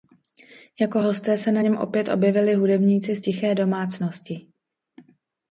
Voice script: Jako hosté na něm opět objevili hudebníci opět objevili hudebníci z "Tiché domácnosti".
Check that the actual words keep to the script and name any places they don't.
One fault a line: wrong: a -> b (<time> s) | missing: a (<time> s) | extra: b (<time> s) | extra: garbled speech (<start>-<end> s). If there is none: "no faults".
extra: se (1.4 s)
missing: opět objevili hudebníci (3.1 s)